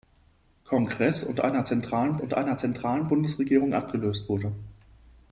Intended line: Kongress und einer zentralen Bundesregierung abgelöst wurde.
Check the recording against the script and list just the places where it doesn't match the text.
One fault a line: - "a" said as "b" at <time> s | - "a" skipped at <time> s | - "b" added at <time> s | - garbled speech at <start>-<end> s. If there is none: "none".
- "und einer zentralen" added at 2.2 s